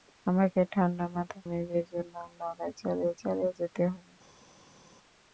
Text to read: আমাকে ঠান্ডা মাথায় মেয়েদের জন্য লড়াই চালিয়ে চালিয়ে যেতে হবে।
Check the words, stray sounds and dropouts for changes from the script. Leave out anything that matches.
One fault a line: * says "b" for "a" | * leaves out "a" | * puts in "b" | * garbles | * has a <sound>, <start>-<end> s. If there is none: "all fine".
all fine